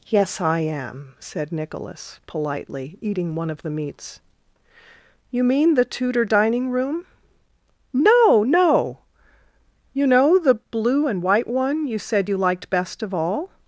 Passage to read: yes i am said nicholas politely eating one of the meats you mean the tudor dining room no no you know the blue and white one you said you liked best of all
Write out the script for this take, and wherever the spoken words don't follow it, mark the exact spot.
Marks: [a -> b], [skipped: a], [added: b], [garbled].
yes i am said nicholas politely eating one of the meats you mean the tudor dining room no no you know the blue and white one you said you liked best of all